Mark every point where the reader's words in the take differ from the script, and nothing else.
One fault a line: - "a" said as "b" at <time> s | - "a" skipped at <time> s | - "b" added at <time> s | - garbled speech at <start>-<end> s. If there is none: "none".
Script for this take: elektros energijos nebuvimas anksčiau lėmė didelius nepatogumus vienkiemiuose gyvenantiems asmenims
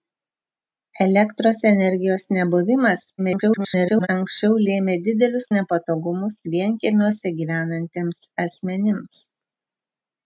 - garbled speech at 3.2-4.1 s